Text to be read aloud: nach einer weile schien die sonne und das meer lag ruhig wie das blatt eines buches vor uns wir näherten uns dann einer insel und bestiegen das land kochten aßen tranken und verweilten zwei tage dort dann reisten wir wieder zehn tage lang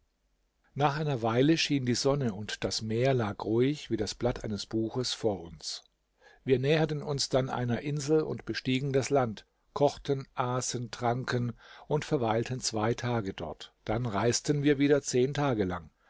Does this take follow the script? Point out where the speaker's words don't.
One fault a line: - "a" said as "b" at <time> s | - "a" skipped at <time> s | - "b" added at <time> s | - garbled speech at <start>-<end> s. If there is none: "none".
none